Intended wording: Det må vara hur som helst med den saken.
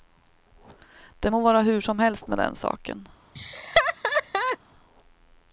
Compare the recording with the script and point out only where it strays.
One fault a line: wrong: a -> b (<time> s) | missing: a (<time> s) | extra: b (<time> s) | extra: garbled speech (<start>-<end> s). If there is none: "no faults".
no faults